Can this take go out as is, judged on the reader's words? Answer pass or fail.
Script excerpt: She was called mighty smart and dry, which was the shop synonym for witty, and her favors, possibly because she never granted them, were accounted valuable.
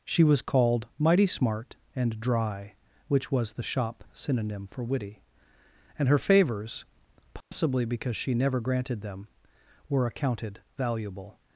pass